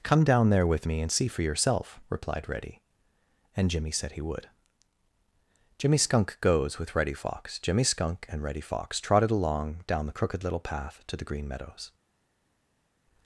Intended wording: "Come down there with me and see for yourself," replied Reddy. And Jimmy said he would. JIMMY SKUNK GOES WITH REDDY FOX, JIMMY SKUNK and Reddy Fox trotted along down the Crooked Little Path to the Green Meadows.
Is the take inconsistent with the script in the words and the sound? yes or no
no